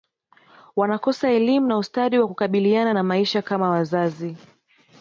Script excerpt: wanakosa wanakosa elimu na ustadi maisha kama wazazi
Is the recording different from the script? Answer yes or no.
yes